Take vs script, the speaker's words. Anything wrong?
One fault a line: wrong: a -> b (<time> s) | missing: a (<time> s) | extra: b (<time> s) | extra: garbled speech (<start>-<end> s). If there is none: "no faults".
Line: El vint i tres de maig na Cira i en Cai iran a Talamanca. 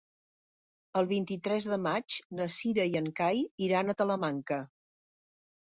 no faults